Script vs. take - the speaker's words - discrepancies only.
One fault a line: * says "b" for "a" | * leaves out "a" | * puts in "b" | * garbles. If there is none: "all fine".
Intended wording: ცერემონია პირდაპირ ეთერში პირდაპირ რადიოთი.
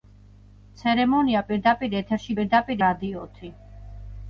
all fine